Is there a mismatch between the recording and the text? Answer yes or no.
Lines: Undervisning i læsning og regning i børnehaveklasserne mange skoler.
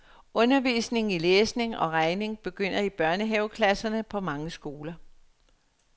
yes